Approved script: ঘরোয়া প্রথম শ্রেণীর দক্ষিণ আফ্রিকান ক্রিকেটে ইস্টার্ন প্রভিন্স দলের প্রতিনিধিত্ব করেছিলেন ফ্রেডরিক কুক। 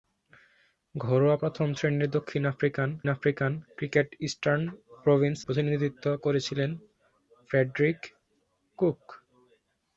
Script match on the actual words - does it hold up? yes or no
no